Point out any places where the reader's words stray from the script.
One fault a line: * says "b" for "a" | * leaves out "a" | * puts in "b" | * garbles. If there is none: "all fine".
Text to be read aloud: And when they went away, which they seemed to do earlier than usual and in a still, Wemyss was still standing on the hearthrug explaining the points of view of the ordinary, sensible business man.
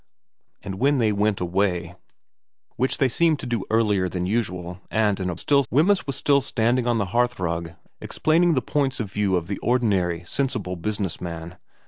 all fine